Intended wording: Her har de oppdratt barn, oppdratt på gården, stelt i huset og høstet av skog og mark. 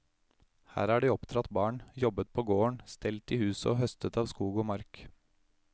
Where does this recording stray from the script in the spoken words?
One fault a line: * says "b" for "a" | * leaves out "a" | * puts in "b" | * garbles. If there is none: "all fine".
* says "jobbet" for "oppdratt"